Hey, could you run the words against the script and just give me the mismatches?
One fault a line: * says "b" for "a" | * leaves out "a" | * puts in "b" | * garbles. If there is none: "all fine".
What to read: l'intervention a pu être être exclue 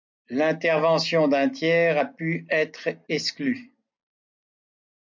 * puts in "d'un tiers"
* leaves out "être"